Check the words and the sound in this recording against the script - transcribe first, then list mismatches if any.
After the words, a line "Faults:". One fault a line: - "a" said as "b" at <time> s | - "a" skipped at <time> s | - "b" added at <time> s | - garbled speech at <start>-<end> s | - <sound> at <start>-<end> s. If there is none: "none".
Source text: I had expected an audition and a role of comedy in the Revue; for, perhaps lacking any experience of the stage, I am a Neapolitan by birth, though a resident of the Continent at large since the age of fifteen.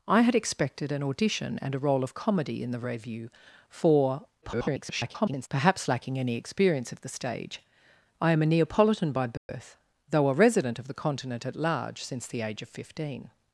I had expected an audition and a role of comedy in the Revue; for, [garbled] perhaps lacking any experience of the stage, I am a Neapolitan by birth, though a resident of the Continent at large since the age of fifteen.
Faults:
- garbled speech at 4.4-5.5 s
- dropout at 9.4-9.5 s